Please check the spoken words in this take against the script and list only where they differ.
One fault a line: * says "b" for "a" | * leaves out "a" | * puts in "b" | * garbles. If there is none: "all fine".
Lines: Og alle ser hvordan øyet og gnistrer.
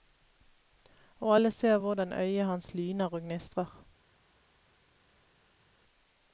* puts in "hans lyner"